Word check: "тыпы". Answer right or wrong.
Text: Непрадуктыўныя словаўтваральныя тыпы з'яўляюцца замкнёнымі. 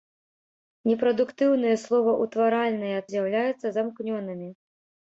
wrong